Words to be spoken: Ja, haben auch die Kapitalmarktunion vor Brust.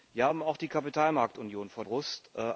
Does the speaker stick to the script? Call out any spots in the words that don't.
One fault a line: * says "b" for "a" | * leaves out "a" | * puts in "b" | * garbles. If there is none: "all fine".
all fine